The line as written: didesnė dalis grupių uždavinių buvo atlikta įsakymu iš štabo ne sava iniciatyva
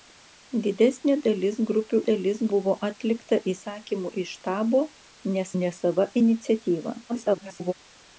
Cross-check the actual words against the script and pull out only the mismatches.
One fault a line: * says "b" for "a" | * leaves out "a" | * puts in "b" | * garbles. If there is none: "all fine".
* says "dalis" for "uždavinių"
* puts in "ne"
* garbles